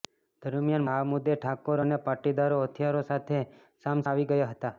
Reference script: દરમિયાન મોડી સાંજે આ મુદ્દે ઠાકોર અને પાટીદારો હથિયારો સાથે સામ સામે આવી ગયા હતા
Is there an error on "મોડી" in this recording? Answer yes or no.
yes